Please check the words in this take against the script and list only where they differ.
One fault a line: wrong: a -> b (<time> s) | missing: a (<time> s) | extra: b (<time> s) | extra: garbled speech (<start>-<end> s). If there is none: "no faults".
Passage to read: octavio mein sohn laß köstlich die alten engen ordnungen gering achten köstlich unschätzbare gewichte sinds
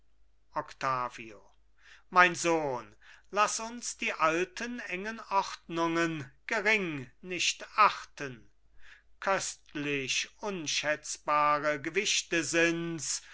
wrong: köstlich -> uns (3.6 s)
extra: nicht (7.2 s)